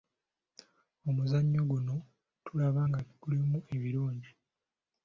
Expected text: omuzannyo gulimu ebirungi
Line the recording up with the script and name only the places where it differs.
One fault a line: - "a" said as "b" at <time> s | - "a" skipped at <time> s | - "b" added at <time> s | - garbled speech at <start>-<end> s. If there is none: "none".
- "guno tulaba nga" added at 1.7 s